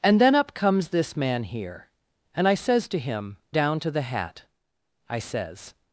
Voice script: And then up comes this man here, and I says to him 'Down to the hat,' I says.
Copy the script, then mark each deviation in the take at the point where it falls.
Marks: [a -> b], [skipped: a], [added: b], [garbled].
And then up comes this man here, and I says to him 'Down to the hat,' I says.